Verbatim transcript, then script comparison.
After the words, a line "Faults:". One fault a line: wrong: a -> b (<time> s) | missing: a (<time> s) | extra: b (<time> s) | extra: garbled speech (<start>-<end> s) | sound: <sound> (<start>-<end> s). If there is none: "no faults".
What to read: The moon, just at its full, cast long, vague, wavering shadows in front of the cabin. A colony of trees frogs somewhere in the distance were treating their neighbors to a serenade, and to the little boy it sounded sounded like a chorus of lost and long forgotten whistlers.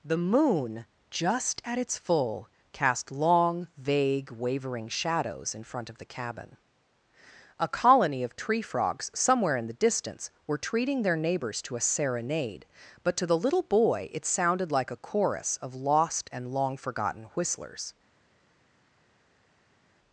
The moon, just at its full, cast long, vague, wavering shadows in front of the cabin. A colony of tree frogs somewhere in the distance were treating their neighbors to a serenade, but to the little boy it sounded like a chorus of lost and long forgotten whistlers.
Faults:
wrong: trees -> tree (8.3 s)
wrong: and -> but (13.0 s)
missing: sounded (14.7 s)